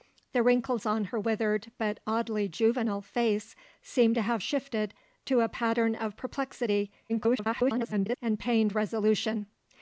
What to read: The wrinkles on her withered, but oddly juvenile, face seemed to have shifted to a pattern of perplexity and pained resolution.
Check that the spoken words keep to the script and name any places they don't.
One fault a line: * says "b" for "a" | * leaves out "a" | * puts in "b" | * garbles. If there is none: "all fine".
* garbles